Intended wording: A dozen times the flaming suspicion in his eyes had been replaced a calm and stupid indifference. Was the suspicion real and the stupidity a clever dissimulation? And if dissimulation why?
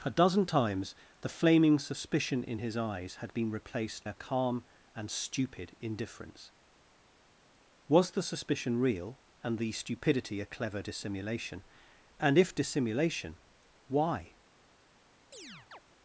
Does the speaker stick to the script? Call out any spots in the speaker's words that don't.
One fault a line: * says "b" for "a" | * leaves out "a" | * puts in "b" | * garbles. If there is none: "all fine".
all fine